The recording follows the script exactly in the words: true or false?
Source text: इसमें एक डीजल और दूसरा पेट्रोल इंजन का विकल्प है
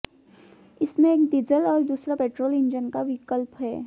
true